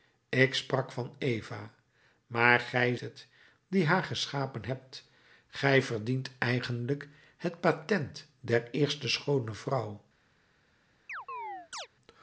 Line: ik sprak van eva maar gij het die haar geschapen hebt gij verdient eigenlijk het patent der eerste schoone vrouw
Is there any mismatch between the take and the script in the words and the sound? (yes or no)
yes